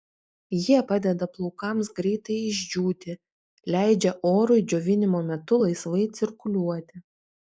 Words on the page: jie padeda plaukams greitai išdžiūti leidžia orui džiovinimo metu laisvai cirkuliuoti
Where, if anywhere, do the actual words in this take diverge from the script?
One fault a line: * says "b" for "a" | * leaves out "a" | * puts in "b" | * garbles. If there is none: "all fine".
all fine